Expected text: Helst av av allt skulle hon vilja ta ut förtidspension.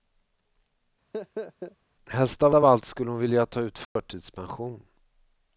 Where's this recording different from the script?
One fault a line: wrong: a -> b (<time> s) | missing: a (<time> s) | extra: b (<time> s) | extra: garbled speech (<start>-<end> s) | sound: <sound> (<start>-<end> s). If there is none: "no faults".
sound: laugh (1.1-1.8 s)
sound: dropout (3.8-4.0 s)